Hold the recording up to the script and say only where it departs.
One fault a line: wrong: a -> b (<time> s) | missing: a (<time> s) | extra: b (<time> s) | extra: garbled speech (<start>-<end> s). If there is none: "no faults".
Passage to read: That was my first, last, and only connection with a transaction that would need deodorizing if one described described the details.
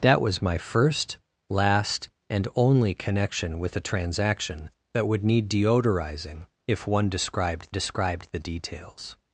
no faults